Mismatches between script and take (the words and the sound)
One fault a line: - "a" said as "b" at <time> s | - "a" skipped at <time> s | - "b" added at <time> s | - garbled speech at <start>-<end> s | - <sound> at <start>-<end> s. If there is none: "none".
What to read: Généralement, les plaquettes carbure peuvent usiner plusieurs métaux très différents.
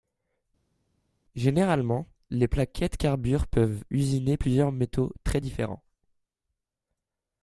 none